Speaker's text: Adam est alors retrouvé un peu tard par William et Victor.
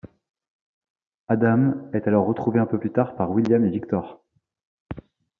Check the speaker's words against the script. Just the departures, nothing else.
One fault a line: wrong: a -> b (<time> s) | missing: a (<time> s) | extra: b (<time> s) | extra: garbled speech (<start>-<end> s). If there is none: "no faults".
extra: plus (2.8 s)